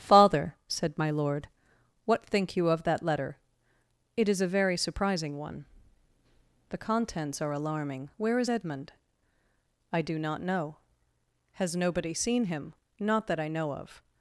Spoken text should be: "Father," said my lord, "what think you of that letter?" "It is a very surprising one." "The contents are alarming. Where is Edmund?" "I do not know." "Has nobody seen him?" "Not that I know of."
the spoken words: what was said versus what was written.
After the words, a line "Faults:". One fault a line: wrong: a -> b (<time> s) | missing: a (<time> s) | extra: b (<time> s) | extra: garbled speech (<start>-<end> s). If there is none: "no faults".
"Father," said my lord, "what think you of that letter?" "It is a very surprising one." "The contents are alarming. Where is Edmund?" "I do not know." "Has nobody seen him?" "Not that I know of."
Faults:
no faults